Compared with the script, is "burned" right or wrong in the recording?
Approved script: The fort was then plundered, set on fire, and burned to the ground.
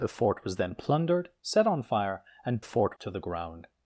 wrong